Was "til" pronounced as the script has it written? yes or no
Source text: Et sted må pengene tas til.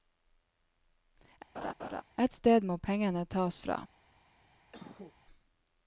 no